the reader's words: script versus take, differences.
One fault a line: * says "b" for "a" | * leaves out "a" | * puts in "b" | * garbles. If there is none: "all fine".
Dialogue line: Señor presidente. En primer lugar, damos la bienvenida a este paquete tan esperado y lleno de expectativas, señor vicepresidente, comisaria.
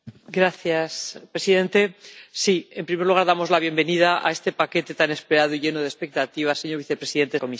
all fine